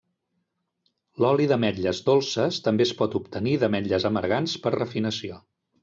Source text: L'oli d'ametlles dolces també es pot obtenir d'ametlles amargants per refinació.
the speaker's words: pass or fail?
pass